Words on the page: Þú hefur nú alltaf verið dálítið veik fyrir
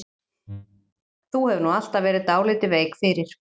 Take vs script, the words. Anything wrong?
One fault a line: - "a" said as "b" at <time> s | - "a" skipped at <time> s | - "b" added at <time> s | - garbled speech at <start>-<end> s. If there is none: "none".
none